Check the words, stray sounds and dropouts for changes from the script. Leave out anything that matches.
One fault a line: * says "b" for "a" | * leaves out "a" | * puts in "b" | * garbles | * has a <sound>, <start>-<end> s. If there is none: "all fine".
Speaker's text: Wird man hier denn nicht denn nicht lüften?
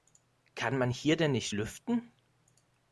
* says "Kann" for "Wird"
* leaves out "denn nicht"